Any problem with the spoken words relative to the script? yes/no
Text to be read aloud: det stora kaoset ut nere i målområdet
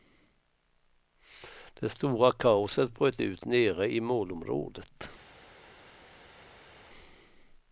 yes